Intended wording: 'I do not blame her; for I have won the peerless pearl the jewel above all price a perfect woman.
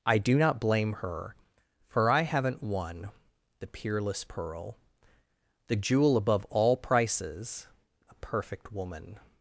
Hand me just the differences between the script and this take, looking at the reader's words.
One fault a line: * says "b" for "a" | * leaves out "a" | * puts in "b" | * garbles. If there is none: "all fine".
* says "haven't" for "have"
* says "prices" for "price"